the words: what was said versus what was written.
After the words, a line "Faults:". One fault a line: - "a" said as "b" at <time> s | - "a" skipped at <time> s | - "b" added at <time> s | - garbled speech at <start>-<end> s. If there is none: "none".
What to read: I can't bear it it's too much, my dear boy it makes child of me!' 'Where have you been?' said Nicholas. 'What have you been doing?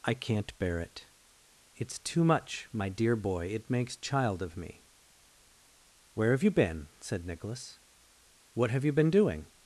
I can't bear it it's too much, my dear boy it makes child of me!' 'Where have you been?' said Nicholas. 'What have you been doing?
Faults:
none